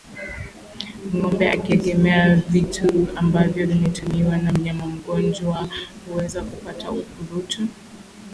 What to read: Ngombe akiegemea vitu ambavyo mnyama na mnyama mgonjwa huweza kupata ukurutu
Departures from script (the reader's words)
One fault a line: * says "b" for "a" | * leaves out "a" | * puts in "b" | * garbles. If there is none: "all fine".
* says "vimetumiwa" for "mnyama"